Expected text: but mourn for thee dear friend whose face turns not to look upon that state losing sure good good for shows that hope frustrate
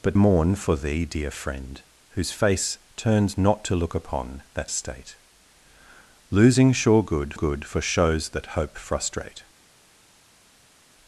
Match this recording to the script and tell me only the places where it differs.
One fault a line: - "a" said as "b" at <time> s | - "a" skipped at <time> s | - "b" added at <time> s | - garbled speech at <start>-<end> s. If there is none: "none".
none